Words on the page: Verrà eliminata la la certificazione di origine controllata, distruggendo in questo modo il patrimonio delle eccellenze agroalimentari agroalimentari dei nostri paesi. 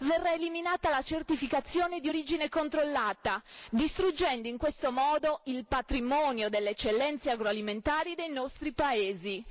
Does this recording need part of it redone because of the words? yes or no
yes